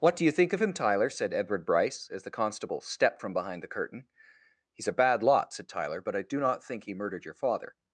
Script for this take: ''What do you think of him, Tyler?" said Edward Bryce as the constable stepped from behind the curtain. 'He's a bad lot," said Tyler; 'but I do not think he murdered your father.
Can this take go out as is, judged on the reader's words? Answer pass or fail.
pass